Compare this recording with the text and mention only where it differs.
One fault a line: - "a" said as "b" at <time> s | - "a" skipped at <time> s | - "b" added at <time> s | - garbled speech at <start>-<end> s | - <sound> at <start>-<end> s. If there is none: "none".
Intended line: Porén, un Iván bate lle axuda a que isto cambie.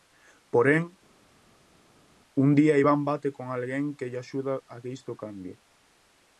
- "día" added at 2.6 s
- "con alguén que" added at 3.4 s